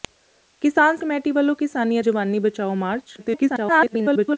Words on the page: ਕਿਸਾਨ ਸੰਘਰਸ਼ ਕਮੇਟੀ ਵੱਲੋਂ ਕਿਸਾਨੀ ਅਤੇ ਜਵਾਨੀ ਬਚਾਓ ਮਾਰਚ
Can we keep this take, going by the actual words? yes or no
no